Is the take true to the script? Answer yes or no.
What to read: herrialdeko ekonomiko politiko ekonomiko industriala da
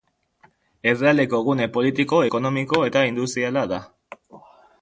no